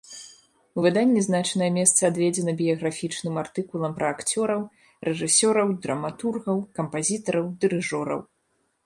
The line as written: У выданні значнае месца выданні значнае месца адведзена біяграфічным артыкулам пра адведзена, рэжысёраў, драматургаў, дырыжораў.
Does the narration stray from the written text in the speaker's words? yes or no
yes